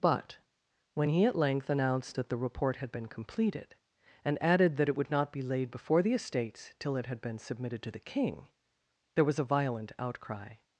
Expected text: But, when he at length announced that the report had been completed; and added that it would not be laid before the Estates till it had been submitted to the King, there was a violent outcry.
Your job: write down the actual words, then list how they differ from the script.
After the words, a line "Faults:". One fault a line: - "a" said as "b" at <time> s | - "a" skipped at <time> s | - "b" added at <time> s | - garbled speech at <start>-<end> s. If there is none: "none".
But, when he at length announced that the report had been completed; and added that it would not be laid before the Estates till it had been submitted to the King, there was a violent outcry.
Faults:
none